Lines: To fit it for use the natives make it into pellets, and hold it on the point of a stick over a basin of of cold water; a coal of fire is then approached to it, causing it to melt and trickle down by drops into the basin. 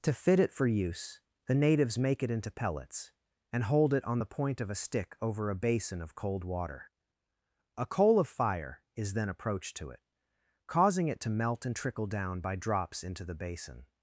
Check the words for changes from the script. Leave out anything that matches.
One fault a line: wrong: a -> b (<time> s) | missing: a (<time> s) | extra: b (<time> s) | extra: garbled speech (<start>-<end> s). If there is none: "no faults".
missing: of (6.1 s)